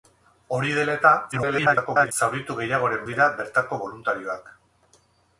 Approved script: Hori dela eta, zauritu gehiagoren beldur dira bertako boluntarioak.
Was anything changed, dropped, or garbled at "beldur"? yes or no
yes